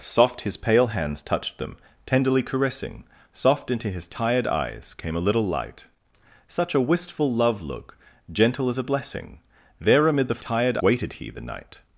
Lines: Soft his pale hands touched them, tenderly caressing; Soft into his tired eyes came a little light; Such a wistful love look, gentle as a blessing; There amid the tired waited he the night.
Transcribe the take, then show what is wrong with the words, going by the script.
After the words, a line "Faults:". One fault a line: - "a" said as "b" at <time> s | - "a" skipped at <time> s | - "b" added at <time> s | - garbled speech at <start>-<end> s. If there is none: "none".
Soft his pale hands touched them, tenderly caressing; Soft into his tired eyes came a little light; Such a wistful love look, gentle as a blessing; There amid the tired waited he the night.
Faults:
none